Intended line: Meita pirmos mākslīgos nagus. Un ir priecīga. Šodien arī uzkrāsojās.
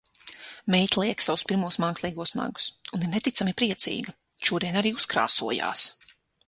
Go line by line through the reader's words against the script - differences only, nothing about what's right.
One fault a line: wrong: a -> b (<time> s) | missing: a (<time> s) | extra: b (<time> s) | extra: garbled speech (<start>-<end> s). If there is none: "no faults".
extra: liek savus (1.0 s)
extra: neticami (3.1 s)